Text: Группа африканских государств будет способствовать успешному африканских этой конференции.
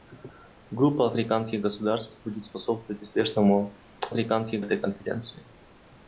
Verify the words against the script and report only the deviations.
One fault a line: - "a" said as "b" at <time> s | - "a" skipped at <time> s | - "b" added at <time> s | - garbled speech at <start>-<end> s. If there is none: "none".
none